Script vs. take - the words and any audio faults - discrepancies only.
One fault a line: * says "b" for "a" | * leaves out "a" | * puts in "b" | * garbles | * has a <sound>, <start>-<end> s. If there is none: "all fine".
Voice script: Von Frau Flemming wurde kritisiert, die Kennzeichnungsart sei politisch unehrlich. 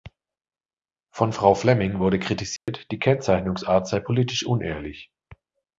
* has a dropout, 2.6-2.7 s